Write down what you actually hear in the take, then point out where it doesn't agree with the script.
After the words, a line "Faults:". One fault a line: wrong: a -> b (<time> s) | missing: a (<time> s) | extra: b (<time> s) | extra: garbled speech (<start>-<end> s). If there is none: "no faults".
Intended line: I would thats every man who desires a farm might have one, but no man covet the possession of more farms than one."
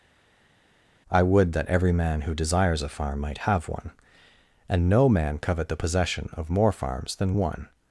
I would that every man who desires a farm might have one, and no man covet the possession of more farms than one."
Faults:
wrong: thats -> that (1.5 s)
wrong: but -> and (4.7 s)